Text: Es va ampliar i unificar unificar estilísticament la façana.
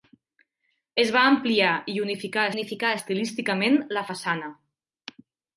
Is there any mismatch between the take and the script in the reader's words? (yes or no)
no